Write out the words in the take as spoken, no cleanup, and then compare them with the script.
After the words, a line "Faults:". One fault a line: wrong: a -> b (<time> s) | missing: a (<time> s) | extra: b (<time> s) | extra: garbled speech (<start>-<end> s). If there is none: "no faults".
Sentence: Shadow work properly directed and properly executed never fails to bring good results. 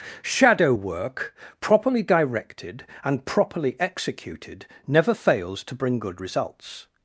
Shadow work properly directed and properly executed never fails to bring good results.
Faults:
no faults